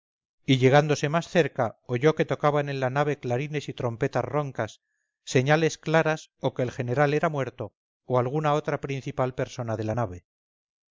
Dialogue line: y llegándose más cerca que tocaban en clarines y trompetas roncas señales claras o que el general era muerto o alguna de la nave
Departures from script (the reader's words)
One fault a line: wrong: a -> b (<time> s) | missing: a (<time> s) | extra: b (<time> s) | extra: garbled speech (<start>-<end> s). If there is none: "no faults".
extra: oyó (1.9 s)
extra: la nave (2.8 s)
extra: otra principal persona (8.5 s)